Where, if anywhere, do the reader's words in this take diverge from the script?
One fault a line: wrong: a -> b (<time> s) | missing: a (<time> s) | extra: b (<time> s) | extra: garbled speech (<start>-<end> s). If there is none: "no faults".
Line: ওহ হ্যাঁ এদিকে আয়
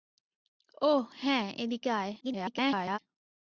extra: garbled speech (2.2-3.0 s)